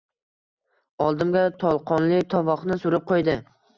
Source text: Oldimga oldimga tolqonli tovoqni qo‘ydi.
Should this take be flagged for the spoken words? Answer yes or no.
yes